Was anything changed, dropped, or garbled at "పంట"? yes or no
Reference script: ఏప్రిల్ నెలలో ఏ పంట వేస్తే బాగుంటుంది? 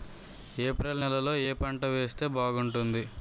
no